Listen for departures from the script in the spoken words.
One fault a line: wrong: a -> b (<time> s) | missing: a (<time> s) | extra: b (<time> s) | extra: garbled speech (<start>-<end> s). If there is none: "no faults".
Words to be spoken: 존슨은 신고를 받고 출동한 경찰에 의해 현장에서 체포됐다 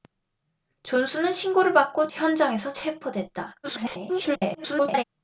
missing: 출동한 경찰에 의해 (2.1 s)
extra: garbled speech (3.6-5.0 s)